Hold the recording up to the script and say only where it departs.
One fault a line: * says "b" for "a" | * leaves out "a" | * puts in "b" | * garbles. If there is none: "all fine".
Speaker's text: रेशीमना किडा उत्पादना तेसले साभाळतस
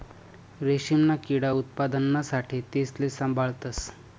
* puts in "साठे"